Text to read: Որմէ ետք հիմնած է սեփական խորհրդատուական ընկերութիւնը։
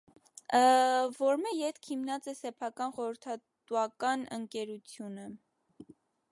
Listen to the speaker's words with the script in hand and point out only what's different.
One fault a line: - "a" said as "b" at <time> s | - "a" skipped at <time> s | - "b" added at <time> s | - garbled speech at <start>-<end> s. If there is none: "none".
none